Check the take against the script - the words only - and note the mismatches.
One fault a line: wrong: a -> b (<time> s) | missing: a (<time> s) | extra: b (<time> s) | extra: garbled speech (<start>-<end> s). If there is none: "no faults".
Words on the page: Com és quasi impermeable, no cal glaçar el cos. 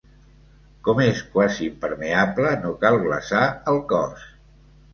no faults